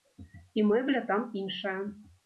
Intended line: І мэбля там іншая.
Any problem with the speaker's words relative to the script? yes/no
no